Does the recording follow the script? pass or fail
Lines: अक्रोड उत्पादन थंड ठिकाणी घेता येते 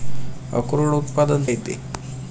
fail